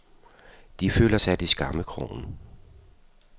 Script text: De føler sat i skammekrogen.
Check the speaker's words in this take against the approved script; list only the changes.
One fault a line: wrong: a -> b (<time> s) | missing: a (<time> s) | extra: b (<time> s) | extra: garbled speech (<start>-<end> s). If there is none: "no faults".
no faults